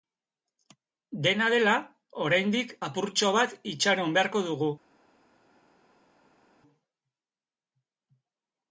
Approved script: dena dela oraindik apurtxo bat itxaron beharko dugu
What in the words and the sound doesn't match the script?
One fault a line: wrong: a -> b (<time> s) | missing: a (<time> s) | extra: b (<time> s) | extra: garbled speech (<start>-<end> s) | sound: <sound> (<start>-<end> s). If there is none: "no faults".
no faults